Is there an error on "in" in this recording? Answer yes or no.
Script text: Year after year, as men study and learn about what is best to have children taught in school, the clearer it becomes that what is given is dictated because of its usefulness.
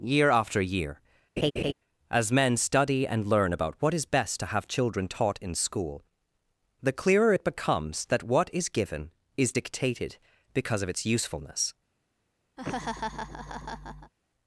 no